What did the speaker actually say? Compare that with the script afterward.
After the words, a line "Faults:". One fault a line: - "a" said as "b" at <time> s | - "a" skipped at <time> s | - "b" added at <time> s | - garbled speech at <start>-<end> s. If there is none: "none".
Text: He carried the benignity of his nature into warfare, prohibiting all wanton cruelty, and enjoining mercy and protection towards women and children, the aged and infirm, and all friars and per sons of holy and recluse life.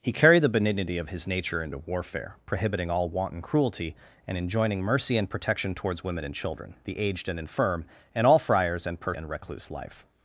He carried the benignity of his nature into warfare, prohibiting all wanton cruelty, and enjoining mercy and protection towards women and children, the aged and infirm, and all friars and per and recluse life.
Faults:
- "sons of holy" skipped at 9.1 s